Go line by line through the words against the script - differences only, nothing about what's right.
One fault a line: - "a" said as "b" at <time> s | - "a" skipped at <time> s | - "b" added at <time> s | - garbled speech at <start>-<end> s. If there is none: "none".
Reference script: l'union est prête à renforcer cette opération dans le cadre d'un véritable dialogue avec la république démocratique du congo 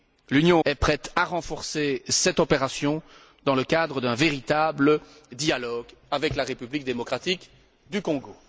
none